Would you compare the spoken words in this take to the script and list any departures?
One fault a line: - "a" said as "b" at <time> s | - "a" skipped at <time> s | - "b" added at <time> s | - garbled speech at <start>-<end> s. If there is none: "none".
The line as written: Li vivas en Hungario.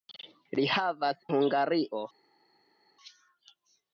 - "en" skipped at 1.2 s